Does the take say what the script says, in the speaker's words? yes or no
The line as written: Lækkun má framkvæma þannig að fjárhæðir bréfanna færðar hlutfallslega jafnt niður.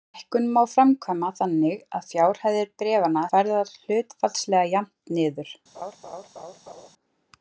yes